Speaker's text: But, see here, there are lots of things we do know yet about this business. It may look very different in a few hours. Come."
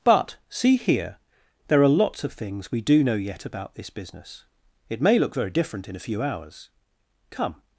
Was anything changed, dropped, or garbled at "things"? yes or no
no